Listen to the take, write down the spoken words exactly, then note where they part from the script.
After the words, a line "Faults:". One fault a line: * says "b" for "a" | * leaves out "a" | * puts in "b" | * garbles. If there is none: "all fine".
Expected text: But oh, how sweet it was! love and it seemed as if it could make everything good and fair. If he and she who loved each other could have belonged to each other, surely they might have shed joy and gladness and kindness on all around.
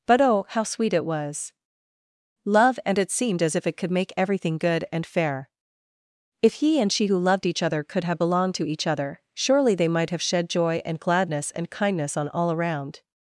But oh, how sweet it was! love and it seemed as if it could make everything good and fair. If he and she who loved each other could have belonged to each other, surely they might have shed joy and gladness and kindness on all around.
Faults:
all fine